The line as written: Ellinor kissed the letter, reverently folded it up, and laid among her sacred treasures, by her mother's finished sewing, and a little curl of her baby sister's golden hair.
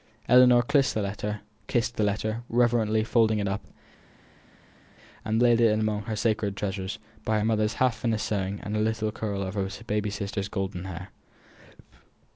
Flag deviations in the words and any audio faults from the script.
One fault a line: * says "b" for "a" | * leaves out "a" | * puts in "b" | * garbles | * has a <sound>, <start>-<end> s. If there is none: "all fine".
* puts in "it"
* puts in "half"